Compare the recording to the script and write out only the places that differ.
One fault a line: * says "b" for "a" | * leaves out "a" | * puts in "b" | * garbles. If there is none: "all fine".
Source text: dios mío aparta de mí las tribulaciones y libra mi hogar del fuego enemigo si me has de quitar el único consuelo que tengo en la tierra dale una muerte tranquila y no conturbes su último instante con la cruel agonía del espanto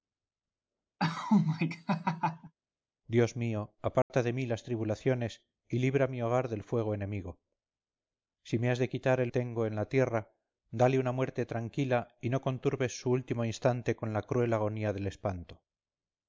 * leaves out "único consuelo que"